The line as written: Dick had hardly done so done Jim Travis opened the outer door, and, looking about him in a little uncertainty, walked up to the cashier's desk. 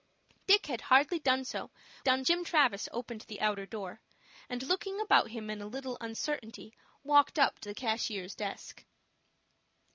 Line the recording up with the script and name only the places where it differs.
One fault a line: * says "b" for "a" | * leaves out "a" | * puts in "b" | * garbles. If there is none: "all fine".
all fine